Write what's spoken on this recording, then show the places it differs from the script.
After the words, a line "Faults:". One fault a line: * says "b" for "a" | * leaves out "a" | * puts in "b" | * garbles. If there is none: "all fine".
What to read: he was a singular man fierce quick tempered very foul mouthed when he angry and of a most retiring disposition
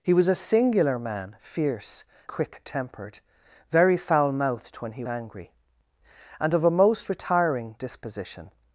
he was a singular man fierce quick tempered very foul mouthed when he angry and of a most retiring disposition
Faults:
all fine